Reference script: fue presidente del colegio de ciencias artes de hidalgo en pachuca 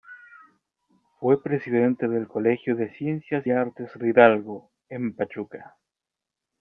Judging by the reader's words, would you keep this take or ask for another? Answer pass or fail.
pass